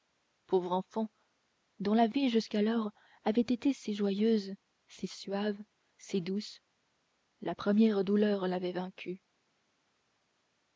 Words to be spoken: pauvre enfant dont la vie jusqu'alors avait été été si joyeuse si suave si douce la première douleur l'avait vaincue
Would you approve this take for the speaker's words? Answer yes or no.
no